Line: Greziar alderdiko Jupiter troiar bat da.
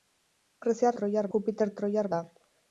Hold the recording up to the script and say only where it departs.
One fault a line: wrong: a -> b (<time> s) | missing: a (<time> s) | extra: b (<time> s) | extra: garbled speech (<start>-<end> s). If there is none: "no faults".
wrong: alderdiko -> troiar (1.0 s)
missing: bat (2.1 s)